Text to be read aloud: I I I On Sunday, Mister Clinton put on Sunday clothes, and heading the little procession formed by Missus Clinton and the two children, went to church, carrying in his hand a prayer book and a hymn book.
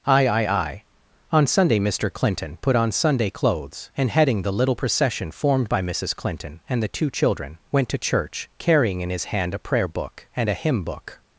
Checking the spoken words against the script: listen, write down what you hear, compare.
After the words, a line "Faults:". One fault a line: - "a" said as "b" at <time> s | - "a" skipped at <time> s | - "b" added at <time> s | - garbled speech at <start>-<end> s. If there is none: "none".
I I I On Sunday, Mister Clinton put on Sunday clothes, and heading the little procession formed by Missus Clinton and the two children, went to church, carrying in his hand a prayer book and a hymn book.
Faults:
none